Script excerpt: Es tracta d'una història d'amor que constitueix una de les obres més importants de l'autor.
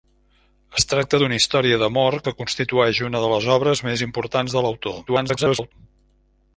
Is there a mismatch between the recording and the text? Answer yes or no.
yes